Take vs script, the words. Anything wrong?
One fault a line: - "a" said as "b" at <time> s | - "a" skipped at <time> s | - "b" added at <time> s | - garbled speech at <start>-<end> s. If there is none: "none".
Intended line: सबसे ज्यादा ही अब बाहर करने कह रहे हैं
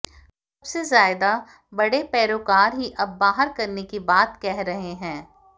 - "बड़े पैरोकार" added at 1.7 s
- "की बात" added at 3.8 s